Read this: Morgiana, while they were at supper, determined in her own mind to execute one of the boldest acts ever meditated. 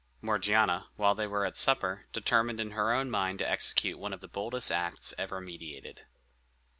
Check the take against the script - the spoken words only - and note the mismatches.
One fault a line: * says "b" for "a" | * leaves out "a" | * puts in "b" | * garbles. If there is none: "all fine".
all fine